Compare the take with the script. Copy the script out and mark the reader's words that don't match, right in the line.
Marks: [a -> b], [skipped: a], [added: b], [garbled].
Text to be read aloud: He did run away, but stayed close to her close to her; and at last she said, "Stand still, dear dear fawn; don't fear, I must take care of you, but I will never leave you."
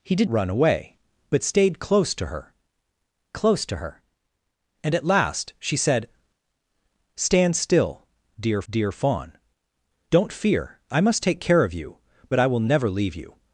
He did run away, but stayed close to her close to her; and at last she said, "Stand still, dear dear fawn; don't fear, I must take care of you, but I will never leave you."